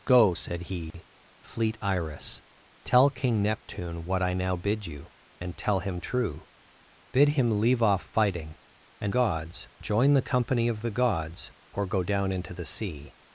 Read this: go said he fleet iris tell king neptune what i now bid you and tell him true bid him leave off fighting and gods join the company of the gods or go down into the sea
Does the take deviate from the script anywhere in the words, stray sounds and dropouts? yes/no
yes